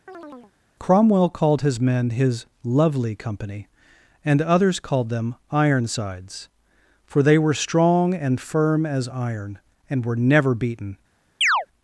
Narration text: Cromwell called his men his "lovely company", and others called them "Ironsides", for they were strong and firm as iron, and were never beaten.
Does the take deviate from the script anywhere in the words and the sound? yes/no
yes